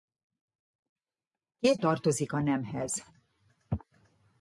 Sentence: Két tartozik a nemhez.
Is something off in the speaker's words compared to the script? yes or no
no